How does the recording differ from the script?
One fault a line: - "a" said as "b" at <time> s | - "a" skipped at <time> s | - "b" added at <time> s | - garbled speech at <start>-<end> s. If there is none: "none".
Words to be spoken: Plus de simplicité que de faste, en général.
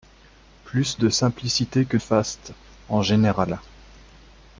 - "de" skipped at 2.0 s